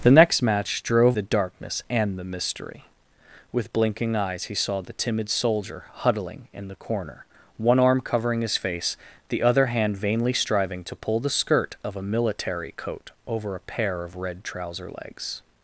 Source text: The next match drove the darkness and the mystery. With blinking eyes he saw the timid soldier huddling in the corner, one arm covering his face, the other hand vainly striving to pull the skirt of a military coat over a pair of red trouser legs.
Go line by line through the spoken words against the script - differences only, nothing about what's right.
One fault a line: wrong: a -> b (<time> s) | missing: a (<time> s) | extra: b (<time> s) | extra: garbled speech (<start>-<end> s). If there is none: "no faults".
no faults